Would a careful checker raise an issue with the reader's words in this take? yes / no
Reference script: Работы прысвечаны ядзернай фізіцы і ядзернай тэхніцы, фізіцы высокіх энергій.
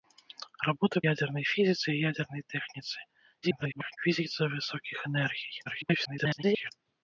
yes